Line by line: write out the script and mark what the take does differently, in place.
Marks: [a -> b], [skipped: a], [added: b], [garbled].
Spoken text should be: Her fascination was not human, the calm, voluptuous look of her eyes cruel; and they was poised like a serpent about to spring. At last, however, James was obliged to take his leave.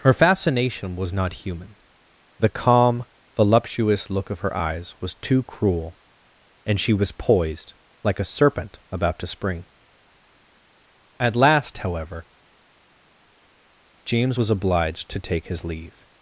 Her fascination was not human, the calm, voluptuous look of her eyes [added: was too] cruel; and [they -> she] was poised like a serpent about to spring. At last, however, James was obliged to take his leave.